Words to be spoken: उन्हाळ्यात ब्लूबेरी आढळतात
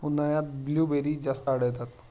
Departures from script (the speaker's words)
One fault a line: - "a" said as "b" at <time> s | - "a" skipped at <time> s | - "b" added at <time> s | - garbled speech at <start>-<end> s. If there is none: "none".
- "जास्त" added at 1.1 s